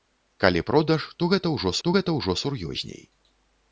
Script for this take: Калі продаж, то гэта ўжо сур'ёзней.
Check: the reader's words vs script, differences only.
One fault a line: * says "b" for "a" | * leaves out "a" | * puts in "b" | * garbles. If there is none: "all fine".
* puts in "то гэта ўжо"